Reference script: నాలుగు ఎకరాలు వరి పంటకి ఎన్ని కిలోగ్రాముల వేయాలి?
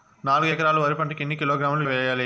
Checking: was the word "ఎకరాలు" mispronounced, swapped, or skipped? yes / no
no